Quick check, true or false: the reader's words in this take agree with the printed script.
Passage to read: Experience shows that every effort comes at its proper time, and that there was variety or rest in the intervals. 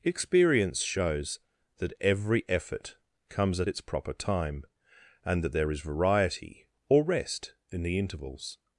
false